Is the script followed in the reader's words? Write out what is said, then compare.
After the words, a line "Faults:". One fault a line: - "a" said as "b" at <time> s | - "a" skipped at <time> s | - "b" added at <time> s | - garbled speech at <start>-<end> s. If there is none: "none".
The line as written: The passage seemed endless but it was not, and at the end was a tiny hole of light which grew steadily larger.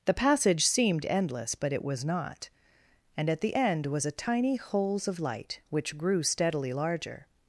The passage seemed endless but it was not, and at the end was a tiny holes of light which grew steadily larger.
Faults:
- "hole" said as "holes" at 4.6 s